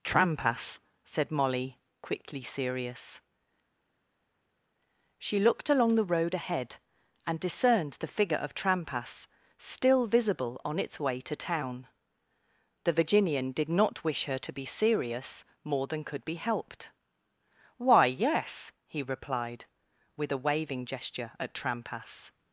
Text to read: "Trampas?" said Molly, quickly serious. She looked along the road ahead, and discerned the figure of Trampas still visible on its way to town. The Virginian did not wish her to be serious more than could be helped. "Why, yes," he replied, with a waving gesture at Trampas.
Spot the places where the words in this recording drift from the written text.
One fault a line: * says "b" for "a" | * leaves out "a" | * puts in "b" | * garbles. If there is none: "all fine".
all fine